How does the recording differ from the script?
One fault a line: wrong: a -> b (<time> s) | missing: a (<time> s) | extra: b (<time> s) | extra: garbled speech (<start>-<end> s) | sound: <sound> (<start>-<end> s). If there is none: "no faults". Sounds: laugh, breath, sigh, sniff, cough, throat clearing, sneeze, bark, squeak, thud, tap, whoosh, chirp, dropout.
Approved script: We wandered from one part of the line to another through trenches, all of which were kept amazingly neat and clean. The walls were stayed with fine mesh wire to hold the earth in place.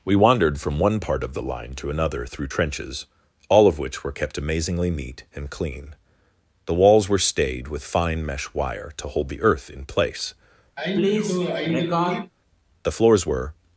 sound: sneeze (10.8-12.3 s)
extra: The floors were (12.8 s)